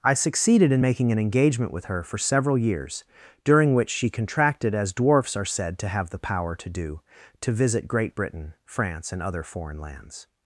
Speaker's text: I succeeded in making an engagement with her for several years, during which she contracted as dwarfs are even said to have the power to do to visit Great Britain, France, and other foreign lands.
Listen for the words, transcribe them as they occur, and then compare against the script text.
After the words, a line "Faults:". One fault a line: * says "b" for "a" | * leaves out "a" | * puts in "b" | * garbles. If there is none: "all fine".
I succeeded in making an engagement with her for several years, during which she contracted as dwarfs are said to have the power to do to visit Great Britain, France, and other foreign lands.
Faults:
* leaves out "even"